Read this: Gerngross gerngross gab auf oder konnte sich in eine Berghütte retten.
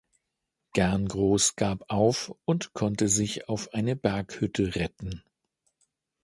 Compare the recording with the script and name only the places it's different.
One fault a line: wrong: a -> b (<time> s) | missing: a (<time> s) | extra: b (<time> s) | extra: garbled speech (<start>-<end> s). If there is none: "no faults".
missing: gerngross (1.6 s)
wrong: oder -> und (2.5 s)
wrong: in -> auf (3.5 s)